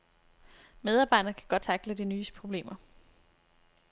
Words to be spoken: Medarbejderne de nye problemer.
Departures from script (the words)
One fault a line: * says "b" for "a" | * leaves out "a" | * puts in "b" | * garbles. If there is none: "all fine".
* puts in "kan godt tackle"